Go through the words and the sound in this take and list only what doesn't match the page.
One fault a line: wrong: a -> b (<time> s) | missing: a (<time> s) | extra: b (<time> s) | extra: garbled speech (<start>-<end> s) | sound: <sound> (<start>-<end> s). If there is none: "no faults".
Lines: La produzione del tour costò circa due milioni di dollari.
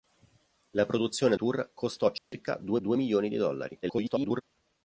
missing: del (1.4 s)
sound: dropout (2.2-2.3 s)
extra: due (2.8 s)
extra: garbled speech (3.8-4.4 s)